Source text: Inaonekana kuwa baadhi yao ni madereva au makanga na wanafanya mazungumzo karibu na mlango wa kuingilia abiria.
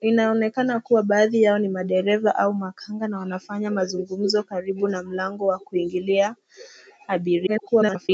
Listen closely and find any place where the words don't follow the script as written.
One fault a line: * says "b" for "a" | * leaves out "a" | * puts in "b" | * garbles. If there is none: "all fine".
* garbles